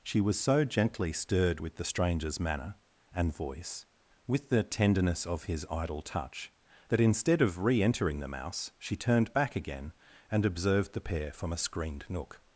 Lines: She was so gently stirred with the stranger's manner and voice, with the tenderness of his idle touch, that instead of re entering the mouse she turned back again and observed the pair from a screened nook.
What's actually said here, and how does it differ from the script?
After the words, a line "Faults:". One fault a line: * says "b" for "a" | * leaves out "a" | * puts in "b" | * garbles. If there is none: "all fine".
She was so gently stirred with the stranger's manner and voice, with the tenderness of his idle touch, that instead of re entering the mouse she turned back again and observed the pair from a screened nook.
Faults:
all fine